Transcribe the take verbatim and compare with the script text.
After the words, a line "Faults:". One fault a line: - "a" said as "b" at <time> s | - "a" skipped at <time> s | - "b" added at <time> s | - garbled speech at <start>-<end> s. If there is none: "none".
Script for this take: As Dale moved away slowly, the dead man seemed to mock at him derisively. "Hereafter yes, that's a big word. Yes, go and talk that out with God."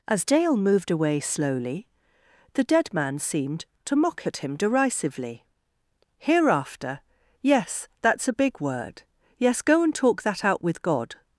As Dale moved away slowly, the dead man seemed to mock at him derisively. "Hereafter yes, that's a big word. Yes, go and talk that out with God."
Faults:
none